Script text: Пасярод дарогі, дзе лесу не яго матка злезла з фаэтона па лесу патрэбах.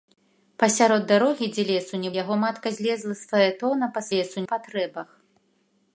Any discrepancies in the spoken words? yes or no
no